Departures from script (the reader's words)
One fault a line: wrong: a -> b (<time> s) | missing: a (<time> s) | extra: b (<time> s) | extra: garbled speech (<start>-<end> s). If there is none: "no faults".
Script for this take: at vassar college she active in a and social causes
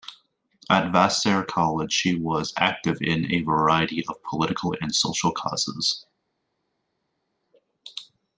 extra: was (2.1 s)
extra: variety of political (3.4 s)